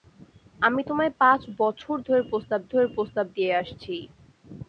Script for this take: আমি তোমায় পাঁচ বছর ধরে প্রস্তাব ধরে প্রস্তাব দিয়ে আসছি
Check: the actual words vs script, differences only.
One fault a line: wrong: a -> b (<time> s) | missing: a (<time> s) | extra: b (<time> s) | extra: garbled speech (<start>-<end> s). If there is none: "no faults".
no faults